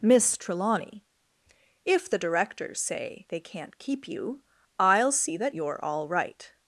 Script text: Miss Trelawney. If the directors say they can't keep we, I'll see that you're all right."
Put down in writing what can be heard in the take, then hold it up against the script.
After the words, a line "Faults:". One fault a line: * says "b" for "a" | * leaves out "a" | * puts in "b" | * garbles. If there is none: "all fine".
Miss Trelawney. If the directors say they can't keep you, I'll see that you're all right."
Faults:
* says "you" for "we"